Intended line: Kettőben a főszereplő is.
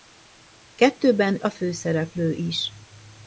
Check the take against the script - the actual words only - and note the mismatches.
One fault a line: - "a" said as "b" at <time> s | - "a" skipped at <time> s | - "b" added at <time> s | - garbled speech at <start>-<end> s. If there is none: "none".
none